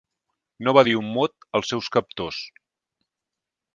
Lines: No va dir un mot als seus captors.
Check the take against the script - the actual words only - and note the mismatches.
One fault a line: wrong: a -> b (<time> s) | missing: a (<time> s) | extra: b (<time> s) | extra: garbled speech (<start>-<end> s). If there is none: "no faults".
no faults